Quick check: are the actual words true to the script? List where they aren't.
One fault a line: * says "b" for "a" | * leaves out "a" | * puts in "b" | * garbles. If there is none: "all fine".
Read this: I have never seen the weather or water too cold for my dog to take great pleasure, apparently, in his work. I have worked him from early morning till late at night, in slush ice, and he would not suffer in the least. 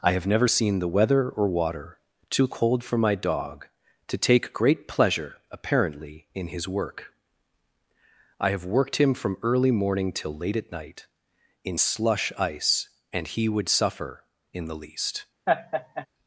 * leaves out "not"